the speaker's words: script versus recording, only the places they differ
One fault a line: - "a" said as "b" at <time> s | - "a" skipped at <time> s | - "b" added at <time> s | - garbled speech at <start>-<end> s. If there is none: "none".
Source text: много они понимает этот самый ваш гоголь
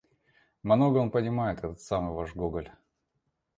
- "они" said as "он" at 1.0 s